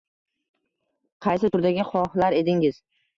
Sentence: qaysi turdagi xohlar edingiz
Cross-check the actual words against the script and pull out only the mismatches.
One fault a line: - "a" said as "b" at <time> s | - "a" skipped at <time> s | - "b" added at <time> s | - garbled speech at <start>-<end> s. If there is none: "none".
none